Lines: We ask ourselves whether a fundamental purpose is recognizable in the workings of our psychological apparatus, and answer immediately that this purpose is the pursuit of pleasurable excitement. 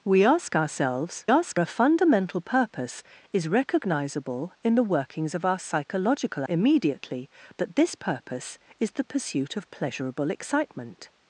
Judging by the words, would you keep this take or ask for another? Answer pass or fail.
fail